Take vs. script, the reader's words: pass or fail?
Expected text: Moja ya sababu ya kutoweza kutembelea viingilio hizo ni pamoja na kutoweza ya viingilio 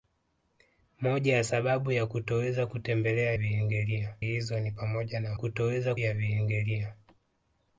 pass